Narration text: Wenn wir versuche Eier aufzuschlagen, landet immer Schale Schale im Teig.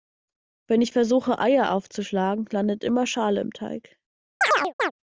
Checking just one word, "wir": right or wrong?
wrong